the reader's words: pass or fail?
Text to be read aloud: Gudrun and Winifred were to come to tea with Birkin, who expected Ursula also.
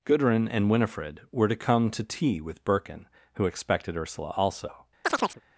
pass